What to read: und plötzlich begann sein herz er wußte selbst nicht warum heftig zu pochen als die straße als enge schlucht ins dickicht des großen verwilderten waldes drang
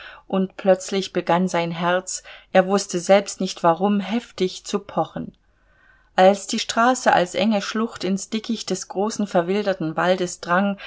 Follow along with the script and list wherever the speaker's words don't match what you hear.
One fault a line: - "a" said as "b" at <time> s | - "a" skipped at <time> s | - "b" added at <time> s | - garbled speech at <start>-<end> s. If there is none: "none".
none